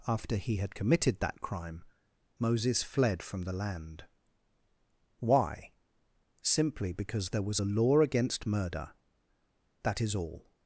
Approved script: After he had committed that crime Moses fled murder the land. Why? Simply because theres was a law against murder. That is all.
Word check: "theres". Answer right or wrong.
wrong